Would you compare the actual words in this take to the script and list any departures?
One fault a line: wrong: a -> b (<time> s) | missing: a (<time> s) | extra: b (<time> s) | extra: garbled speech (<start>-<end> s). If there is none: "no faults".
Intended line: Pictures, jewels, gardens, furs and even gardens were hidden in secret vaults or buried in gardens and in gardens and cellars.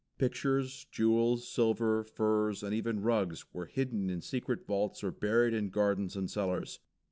wrong: gardens -> silver (1.4 s)
wrong: gardens -> rugs (3.0 s)
missing: in gardens and (6.3 s)